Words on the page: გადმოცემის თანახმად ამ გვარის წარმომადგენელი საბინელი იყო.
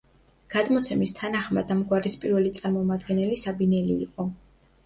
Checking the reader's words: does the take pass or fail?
fail